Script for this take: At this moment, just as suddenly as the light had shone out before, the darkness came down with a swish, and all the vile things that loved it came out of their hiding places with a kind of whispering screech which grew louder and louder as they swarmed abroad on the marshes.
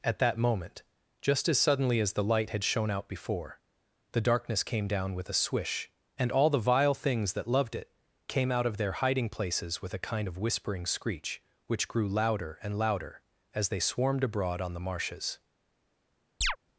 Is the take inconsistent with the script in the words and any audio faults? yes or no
yes